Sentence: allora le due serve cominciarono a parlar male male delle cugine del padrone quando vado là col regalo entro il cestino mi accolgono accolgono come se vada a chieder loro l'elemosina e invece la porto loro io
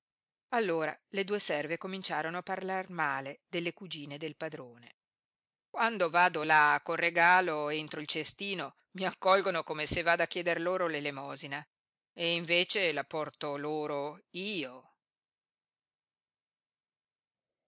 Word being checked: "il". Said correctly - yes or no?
yes